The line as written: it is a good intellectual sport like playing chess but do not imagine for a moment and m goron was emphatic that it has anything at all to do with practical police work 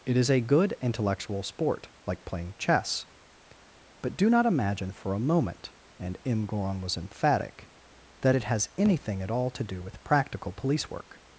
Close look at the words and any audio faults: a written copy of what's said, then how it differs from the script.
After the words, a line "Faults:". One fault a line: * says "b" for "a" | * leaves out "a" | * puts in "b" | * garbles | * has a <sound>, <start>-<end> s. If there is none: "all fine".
it is a good intellectual sport like playing chess but do not imagine for a moment and m goron was emphatic that it has anything at all to do with practical police work
Faults:
all fine